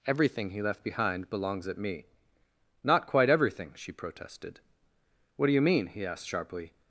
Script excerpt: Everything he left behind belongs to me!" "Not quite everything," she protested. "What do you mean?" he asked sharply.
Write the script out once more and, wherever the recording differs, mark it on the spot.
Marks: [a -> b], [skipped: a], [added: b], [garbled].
Everything he left behind belongs [to -> at] me!" "Not quite everything," she protested. "What do you mean?" he asked sharply.